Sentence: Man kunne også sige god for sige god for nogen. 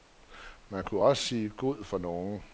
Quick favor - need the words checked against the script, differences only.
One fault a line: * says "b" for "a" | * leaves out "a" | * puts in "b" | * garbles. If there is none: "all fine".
* leaves out "sige god for"